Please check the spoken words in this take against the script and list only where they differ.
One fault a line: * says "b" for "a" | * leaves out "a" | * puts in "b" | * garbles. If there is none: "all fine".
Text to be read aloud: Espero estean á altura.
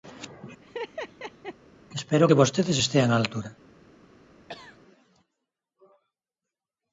* puts in "que vostedes"